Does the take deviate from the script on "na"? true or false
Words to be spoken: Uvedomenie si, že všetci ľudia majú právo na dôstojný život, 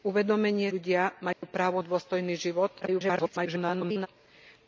true